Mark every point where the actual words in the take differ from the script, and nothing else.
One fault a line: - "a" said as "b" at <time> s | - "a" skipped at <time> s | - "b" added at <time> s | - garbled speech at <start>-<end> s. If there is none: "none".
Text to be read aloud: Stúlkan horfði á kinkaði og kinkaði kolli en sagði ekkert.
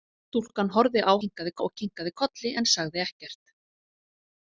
none